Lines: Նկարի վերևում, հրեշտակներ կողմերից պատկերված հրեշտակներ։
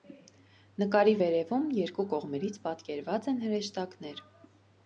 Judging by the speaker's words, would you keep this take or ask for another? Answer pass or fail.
fail